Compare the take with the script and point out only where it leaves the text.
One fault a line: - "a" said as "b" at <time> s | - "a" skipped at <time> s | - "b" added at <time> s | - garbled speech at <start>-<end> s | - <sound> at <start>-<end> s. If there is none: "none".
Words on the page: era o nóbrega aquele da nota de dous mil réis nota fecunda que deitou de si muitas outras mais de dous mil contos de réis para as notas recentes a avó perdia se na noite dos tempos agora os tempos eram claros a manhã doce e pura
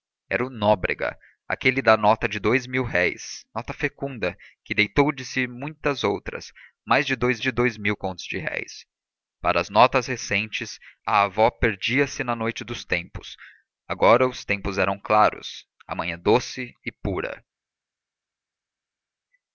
- "de dous" added at 7.4 s